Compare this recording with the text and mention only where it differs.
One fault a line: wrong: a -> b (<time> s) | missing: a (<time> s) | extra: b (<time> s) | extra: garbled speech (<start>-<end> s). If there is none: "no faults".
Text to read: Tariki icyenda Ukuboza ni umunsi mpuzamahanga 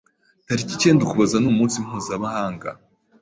no faults